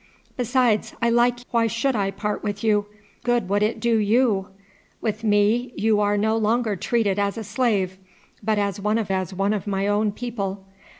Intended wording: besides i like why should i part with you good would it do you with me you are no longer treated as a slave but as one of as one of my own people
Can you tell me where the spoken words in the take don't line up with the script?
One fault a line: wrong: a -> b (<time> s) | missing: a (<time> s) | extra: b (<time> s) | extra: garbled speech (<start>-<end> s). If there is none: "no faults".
no faults